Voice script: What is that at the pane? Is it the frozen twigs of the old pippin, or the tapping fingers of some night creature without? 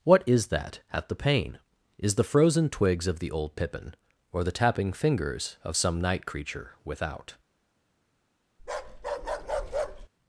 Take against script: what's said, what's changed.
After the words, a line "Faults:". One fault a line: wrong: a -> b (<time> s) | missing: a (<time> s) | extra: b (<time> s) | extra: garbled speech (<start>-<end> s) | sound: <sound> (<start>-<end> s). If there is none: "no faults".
What is that at the pane? Is the frozen twigs of the old pippin, or the tapping fingers of some night creature without?
Faults:
missing: it (2.1 s)
sound: bark (8.6-10.1 s)